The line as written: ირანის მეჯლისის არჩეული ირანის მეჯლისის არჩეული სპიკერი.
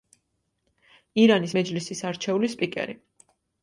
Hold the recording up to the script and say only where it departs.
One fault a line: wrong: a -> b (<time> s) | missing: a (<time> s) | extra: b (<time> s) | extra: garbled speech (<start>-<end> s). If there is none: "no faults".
missing: ირანის მეჯლისის არჩეული (2.6 s)